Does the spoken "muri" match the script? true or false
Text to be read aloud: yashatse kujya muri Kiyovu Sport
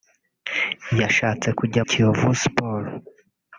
false